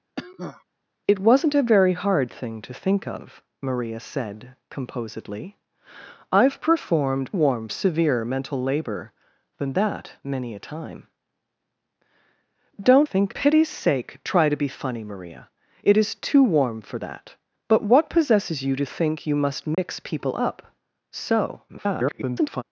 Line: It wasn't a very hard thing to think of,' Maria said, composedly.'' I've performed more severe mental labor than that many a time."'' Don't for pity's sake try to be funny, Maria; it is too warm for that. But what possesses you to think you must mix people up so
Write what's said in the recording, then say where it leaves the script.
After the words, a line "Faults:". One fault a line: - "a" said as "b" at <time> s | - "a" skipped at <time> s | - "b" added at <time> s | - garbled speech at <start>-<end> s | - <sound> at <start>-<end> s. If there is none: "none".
It wasn't a very hard thing to think of,' Maria said, composedly.'' I've performed warm severe mental labor than that many a time."'' Don't think pity's sake try to be funny, Maria; it is too warm for that. But what possesses you to think you must mix people up so [garbled]
Faults:
- cough at 0.2-0.6 s
- "more" said as "warm" at 7.3 s
- "for" said as "think" at 13.0 s
- dropout at 19.7-19.8 s
- garbled speech at 21.7-22.6 s